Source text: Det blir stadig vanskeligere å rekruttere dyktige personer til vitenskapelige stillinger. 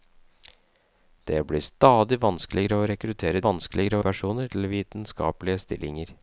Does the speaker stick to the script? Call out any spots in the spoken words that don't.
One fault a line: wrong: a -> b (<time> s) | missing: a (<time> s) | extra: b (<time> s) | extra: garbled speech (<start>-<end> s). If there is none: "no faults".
wrong: dyktige -> vanskeligere (3.4 s)